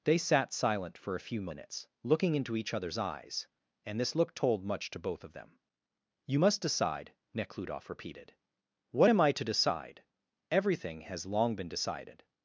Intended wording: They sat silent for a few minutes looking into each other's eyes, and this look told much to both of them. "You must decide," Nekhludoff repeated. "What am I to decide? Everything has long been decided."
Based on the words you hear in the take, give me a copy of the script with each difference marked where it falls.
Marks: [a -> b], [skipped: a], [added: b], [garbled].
They sat silent for a few minutes looking into each other's eyes, and this look told much to both of them. "You must decide," Nekhludoff repeated. "What am I to decide? Everything has long been decided."